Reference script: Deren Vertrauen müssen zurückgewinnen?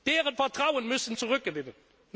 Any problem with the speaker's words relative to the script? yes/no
no